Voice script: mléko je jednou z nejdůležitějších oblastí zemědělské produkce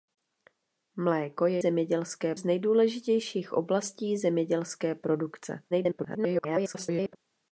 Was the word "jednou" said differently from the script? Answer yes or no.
yes